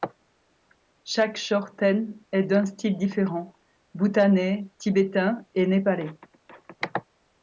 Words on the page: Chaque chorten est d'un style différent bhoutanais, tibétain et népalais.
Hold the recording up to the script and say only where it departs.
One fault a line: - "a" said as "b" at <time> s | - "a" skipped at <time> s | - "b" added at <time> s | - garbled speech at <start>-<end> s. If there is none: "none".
none